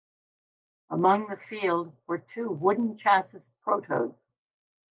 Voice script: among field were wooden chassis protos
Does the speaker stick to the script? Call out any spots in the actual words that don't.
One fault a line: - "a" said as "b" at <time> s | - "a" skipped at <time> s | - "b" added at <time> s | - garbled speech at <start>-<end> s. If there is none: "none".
- "the" added at 1.3 s
- "two" added at 2.2 s